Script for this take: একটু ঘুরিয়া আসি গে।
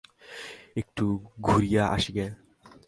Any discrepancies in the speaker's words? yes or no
no